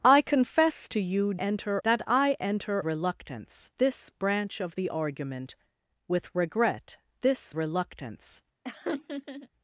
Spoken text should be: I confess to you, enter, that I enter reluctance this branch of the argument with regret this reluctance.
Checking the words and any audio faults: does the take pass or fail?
fail